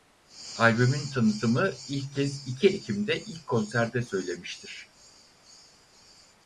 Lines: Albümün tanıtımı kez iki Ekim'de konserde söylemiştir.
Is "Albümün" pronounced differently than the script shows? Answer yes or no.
no